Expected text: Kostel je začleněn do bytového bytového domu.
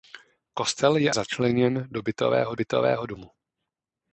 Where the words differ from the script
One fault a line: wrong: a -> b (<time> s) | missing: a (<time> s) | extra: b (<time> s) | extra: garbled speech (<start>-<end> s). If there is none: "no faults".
no faults